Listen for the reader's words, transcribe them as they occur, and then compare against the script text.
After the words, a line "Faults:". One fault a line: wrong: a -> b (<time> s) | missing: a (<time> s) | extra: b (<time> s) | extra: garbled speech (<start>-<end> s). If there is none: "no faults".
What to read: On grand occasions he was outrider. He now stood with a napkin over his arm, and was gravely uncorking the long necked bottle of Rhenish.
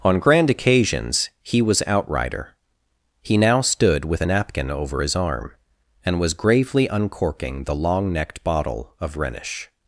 On grand occasions he was outrider. He now stood with a napkin over his arm, and was gravely uncorking the long necked bottle of Rhenish.
Faults:
no faults